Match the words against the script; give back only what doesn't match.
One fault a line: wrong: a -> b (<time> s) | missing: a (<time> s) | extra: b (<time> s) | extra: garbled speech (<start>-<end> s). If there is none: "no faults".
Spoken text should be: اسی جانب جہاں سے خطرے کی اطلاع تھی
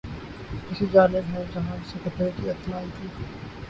extra: ہیں (1.3 s)
extra: آئی (2.8 s)